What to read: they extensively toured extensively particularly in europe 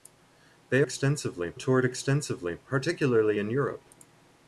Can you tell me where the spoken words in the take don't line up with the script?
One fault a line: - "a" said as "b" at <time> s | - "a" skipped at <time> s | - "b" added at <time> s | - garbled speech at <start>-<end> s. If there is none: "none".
none